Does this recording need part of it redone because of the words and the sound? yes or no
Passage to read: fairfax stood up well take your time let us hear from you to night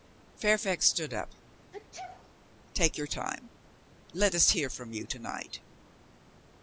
yes